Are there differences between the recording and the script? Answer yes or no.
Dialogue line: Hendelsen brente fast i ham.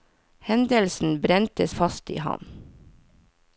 no